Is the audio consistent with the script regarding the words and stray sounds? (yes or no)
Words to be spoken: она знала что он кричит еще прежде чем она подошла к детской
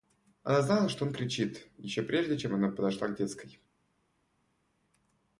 yes